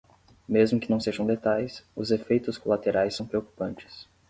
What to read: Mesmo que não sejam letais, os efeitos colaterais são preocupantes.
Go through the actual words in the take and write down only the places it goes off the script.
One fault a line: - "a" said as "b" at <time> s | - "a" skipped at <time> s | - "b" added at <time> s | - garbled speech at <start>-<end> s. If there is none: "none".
none